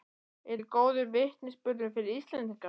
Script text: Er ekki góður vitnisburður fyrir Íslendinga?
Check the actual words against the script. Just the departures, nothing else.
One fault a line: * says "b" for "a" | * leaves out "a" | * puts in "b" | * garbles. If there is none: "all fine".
all fine